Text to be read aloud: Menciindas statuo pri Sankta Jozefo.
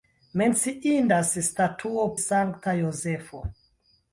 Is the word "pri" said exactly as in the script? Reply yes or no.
no